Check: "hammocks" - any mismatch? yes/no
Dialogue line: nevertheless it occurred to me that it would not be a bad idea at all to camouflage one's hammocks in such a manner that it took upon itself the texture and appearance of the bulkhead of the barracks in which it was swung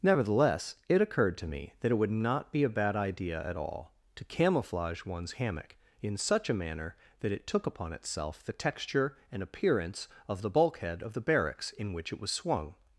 yes